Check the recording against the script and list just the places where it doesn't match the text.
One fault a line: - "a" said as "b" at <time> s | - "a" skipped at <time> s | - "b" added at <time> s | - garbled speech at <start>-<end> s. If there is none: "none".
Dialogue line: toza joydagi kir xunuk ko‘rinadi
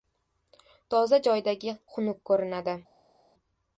- "kir" skipped at 1.8 s